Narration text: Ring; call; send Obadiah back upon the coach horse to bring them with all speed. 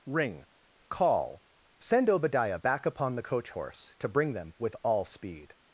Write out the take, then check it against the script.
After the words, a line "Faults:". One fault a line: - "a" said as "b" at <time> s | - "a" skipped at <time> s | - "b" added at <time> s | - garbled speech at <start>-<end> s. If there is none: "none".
Ring; call; send Obadiah back upon the coach horse to bring them with all speed.
Faults:
none